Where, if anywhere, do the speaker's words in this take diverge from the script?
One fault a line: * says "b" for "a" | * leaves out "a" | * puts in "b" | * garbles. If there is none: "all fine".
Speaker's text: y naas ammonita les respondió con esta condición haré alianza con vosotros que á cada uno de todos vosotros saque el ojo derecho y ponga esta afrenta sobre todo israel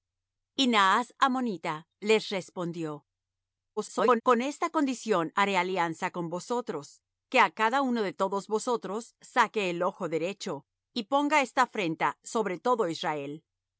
* garbles